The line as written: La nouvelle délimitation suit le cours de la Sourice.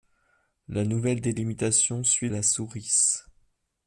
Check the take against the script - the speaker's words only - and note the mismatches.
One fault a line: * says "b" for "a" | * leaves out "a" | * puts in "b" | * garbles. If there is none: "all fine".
* leaves out "le cours de"